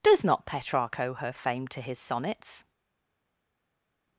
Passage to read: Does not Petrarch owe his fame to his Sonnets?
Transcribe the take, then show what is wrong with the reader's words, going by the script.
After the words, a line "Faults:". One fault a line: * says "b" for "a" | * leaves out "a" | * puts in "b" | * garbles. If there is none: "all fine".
Does not Petrarch owe her fame to his Sonnets?
Faults:
* says "her" for "his"